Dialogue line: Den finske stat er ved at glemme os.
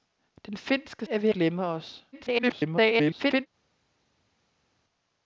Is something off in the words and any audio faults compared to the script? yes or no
yes